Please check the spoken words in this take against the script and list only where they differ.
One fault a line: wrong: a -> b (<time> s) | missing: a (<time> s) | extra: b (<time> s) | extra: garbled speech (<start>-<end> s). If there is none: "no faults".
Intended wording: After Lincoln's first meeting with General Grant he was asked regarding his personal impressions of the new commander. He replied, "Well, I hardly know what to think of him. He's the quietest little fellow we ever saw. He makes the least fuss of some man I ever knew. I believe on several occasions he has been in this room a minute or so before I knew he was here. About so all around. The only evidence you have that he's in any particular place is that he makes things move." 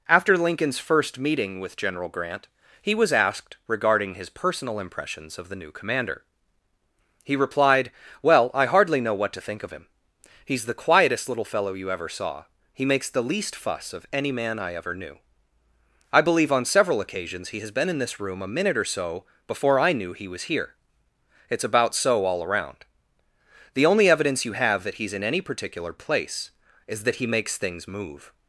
wrong: we -> you (11.7 s)
wrong: some -> any (14.1 s)
extra: It's (21.5 s)